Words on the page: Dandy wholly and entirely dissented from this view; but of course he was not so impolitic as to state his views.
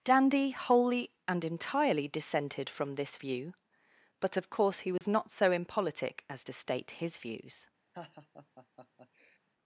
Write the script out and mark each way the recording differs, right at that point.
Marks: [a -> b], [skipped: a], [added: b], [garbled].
Dandy wholly and entirely dissented from this view; but of course he was not so impolitic as to state his views.